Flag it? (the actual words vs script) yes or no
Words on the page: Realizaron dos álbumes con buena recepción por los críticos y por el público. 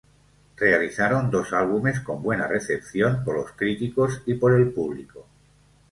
no